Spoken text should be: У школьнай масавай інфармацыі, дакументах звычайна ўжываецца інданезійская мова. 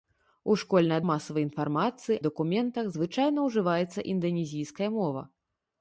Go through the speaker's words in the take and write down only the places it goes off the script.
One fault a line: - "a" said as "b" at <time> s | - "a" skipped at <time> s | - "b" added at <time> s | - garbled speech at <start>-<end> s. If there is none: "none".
none